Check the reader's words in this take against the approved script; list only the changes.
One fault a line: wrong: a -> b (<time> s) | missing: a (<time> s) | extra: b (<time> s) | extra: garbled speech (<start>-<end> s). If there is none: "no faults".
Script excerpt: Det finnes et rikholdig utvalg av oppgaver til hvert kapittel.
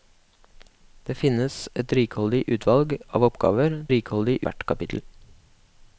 wrong: til -> rikholdig (3.9 s)